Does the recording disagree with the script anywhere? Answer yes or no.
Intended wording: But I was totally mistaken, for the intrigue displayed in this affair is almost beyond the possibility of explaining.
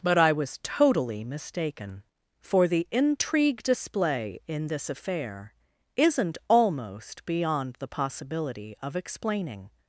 yes